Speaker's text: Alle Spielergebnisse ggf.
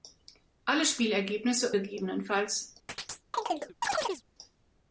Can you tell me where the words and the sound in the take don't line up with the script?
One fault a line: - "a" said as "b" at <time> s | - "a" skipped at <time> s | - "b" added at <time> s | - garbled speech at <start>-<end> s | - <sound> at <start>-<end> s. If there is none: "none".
- chirp at 2.9-4.2 s